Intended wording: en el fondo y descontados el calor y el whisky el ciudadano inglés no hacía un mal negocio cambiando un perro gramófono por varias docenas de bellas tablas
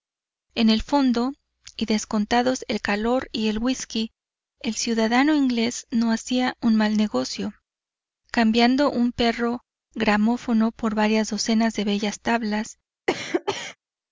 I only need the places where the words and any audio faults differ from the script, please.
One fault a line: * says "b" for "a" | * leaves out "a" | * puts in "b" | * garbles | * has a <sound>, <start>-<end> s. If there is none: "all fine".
* has a cough, 13.1-13.8 s